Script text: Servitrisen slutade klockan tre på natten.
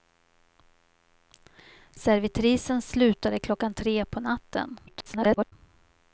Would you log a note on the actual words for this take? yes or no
yes